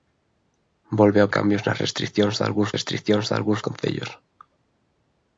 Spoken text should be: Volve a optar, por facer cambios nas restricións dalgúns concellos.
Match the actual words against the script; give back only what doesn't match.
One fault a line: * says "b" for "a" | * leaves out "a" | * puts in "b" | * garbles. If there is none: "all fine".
* says "cambios nas restricións dalgúns" for "optar por facer cambios nas"